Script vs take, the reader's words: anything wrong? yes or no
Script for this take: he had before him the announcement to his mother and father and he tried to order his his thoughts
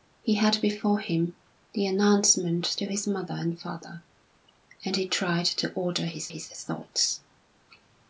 no